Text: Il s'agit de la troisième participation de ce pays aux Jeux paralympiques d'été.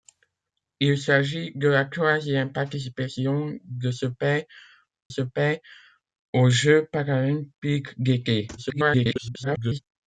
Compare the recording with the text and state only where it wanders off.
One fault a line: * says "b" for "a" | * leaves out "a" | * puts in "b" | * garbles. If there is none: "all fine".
* puts in "ce pays"
* garbles